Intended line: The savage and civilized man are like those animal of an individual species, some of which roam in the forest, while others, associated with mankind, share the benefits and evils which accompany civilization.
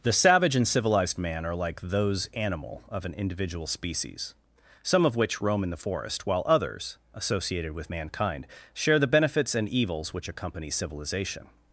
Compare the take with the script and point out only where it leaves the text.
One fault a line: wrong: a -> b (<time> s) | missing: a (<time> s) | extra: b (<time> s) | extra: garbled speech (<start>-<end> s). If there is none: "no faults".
no faults